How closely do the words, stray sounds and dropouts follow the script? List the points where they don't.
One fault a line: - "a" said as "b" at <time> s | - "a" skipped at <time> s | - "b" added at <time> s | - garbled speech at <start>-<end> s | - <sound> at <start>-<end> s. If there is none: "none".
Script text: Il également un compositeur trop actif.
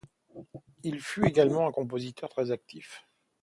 - "fut" added at 1.0 s
- "trop" said as "très" at 2.3 s